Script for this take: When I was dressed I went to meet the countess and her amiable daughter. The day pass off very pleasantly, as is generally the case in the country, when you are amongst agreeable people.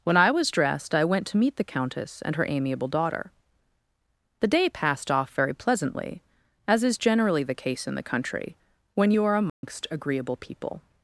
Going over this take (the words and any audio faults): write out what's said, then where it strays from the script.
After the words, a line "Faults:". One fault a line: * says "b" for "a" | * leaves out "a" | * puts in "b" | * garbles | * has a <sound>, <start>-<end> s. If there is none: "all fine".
When I was dressed I went to meet the countess and her amiable daughter. The day passed off very pleasantly, as is generally the case in the country, when you are amongst agreeable people.
Faults:
* says "passed" for "pass"
* has a dropout, 9.5-9.6 s